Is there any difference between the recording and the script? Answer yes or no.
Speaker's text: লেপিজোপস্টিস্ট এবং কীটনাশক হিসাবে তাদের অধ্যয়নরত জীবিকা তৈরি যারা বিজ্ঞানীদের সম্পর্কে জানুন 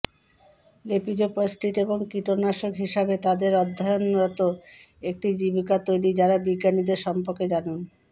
yes